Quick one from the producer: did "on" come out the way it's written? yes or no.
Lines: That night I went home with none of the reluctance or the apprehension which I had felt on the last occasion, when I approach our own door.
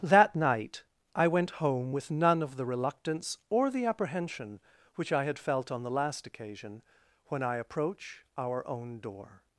yes